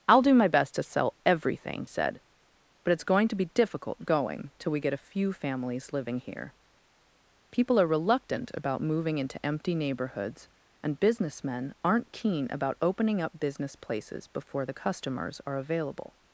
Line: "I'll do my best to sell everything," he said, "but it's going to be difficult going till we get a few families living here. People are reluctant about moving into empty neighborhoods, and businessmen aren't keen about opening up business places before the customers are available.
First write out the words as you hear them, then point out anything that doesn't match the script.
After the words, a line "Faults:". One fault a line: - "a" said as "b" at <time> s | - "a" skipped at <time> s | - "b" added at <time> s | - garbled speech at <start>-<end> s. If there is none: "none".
"I'll do my best to sell everything," said, "but it's going to be difficult going till we get a few families living here. People are reluctant about moving into empty neighborhoods, and businessmen aren't keen about opening up business places before the customers are available.
Faults:
- "he" skipped at 1.9 s